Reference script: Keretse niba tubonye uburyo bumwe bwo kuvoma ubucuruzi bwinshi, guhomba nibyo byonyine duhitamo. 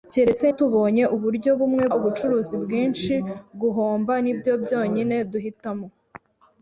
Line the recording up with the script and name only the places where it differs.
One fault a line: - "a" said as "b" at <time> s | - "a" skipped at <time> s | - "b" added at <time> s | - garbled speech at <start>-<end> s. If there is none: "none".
- "niba" skipped at 0.5 s
- "bwo kuvoma" skipped at 1.8 s